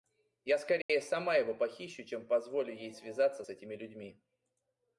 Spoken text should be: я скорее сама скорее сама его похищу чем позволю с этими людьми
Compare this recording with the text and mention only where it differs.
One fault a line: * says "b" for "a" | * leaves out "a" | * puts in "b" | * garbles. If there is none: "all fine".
* leaves out "скорее сама"
* puts in "ей связаться"